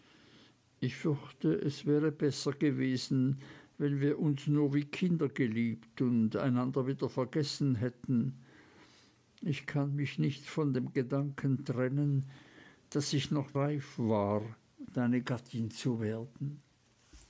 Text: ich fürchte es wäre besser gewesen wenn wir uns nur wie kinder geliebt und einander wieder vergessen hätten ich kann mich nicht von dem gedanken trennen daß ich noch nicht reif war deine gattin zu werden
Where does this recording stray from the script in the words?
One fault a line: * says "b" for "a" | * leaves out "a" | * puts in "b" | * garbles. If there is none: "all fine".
* leaves out "nicht"